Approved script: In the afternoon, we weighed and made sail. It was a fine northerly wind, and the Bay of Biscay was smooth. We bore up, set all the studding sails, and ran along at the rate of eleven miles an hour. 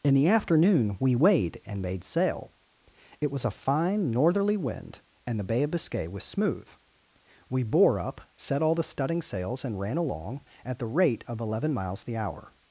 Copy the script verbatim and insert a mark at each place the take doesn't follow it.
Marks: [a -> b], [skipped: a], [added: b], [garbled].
In the afternoon, we weighed and made sail. It was a fine northerly wind, and the Bay of Biscay was smooth. We bore up, set all the studding sails, and ran along at the rate of eleven miles [an -> the] hour.